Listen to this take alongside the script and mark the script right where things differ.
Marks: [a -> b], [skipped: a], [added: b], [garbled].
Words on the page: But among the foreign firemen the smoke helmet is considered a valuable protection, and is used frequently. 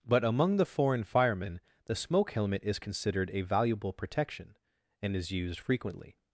But among the foreign firemen the smoke helmet is considered a valuable protection, and is used frequently.